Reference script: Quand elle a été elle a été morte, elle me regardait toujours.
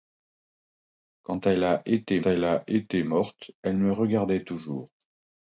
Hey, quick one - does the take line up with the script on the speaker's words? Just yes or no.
yes